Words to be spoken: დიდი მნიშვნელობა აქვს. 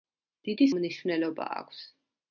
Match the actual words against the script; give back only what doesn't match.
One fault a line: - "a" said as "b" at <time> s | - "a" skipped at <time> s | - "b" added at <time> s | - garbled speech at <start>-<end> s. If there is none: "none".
none